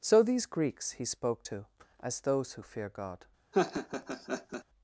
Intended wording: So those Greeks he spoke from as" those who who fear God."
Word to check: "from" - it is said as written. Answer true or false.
false